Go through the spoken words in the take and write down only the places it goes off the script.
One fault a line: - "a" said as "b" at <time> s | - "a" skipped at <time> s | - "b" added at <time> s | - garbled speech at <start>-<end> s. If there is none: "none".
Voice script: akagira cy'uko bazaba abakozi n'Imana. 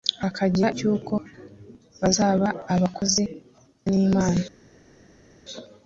none